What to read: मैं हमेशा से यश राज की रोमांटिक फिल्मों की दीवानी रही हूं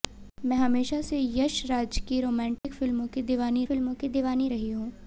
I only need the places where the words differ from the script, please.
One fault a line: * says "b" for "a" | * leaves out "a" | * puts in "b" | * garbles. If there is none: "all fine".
* puts in "फिल्मों की दीवानी"